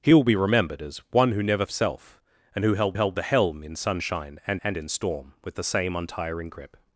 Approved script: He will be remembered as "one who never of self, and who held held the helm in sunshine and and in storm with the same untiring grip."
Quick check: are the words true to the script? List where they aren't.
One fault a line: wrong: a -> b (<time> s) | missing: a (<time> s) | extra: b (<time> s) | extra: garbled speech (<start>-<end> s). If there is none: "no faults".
no faults